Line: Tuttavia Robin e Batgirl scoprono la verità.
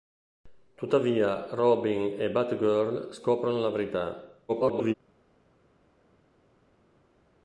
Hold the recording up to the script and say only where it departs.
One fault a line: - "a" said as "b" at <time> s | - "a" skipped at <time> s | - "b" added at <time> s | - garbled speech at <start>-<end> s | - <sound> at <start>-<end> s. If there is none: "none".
- garbled speech at 4.5-4.9 s